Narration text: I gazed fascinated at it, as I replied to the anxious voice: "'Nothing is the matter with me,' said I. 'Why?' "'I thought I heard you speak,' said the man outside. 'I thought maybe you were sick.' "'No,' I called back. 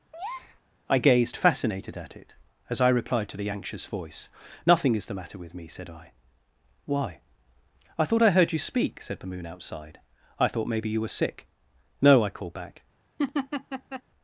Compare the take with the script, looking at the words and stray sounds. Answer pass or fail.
fail